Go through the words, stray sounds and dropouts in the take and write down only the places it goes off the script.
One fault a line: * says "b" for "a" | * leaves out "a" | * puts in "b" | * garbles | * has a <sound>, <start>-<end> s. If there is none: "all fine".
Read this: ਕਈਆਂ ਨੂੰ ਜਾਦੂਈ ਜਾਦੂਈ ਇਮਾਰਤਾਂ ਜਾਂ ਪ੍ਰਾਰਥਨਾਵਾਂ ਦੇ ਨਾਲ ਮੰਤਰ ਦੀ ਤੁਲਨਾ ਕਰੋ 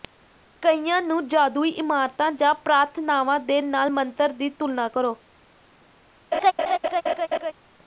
* leaves out "ਜਾਦੂਈ"
* has a laugh, 6.3-7.5 s